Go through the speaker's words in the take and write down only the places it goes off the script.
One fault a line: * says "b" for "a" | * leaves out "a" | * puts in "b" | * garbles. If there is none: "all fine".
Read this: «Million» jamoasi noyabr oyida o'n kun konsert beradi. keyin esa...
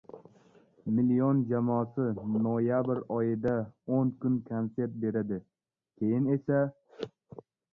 all fine